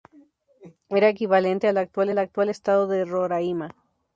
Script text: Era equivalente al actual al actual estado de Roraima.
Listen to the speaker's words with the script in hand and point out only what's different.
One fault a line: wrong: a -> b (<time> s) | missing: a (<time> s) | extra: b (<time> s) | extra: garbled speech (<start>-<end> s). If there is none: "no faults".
no faults